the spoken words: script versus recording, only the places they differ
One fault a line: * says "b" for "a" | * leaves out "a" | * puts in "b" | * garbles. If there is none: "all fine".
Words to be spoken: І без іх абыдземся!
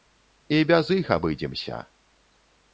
all fine